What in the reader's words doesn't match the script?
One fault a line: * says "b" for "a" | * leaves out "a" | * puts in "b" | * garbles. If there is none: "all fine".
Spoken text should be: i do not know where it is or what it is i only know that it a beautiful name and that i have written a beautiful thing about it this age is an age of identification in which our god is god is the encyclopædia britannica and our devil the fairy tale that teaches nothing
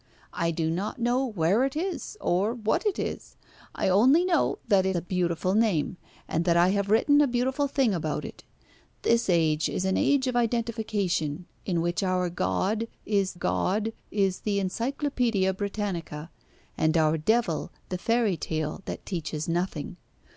all fine